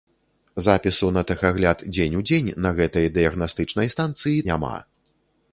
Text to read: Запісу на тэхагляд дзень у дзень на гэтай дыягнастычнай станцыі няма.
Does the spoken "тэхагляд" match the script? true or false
true